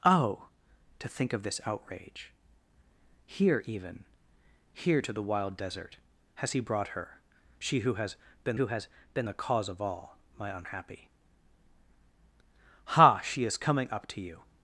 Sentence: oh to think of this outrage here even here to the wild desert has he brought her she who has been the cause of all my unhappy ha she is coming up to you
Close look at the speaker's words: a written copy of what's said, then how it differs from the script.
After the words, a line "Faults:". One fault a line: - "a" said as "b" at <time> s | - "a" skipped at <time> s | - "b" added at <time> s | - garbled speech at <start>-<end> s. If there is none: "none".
oh to think of this outrage here even here to the wild desert has he brought her she who has been who has been the cause of all my unhappy ha she is coming up to you
Faults:
- "who has been" added at 8.5 s